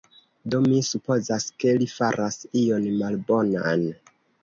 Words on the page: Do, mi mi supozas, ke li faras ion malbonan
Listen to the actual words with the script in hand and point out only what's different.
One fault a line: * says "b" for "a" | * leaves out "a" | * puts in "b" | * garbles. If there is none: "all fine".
* leaves out "mi"